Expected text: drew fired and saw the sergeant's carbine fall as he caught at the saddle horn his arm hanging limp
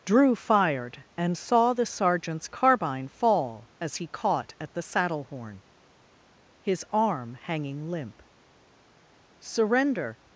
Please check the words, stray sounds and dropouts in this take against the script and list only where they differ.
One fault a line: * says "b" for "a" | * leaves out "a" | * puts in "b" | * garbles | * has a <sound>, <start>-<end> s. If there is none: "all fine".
* puts in "surrender"